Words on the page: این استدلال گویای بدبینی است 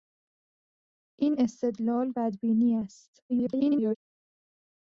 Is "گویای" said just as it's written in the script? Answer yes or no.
no